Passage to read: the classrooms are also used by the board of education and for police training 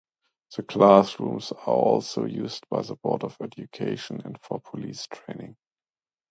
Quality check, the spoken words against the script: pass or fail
pass